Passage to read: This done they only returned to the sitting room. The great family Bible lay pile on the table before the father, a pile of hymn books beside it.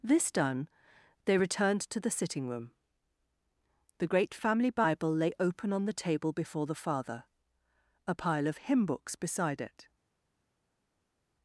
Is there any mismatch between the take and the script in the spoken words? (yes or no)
yes